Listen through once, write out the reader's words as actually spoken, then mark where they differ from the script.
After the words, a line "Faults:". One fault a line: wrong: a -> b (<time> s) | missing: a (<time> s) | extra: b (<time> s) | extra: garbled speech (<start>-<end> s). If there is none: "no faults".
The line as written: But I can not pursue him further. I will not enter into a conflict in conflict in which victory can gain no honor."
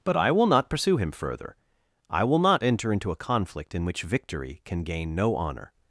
But I will not pursue him further. I will not enter into a conflict in which victory can gain no honor."
Faults:
wrong: can -> will (0.3 s)
missing: conflict in (3.9 s)